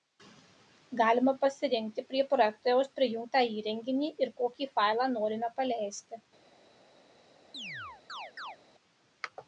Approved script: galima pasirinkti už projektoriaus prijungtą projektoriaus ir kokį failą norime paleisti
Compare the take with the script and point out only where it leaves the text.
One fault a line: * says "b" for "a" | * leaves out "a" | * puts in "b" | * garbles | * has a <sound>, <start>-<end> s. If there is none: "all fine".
* says "prie" for "už"
* says "įrenginį" for "projektoriaus"
* has a chirp, 7.5-8.6 s